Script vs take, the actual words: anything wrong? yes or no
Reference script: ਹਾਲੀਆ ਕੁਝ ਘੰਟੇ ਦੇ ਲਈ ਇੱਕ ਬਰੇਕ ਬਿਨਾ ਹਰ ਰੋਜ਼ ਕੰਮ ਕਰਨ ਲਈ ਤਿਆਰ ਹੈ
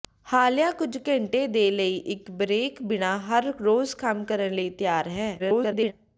yes